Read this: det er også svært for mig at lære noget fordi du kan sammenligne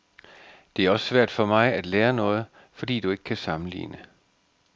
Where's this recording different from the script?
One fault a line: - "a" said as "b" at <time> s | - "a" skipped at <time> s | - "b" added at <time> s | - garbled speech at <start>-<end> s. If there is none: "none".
- "ikke" added at 3.1 s